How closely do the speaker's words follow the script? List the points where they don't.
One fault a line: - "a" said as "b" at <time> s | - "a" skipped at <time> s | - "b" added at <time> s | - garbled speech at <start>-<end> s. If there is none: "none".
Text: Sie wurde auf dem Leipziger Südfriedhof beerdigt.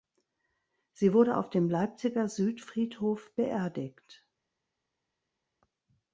none